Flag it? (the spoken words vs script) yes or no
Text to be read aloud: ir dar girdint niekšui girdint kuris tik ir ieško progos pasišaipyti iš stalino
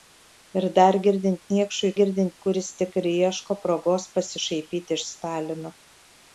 no